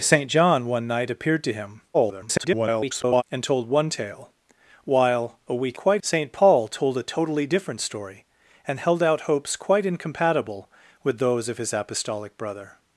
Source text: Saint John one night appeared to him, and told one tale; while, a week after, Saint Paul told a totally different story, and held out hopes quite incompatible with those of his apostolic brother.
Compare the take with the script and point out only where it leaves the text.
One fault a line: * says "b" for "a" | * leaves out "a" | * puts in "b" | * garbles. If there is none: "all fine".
* garbles
* says "quite" for "after"